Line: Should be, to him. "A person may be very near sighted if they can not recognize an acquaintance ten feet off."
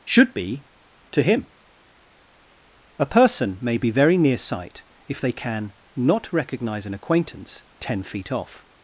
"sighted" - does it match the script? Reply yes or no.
no